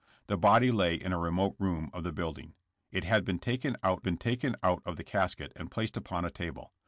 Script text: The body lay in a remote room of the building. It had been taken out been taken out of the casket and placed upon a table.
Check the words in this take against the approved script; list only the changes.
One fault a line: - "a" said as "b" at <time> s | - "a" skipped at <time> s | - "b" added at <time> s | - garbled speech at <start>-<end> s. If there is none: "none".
none